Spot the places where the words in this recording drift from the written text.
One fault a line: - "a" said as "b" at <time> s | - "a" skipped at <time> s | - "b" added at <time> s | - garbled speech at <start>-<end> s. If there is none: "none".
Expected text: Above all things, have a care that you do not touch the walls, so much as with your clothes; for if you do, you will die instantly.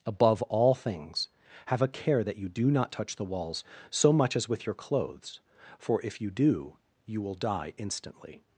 none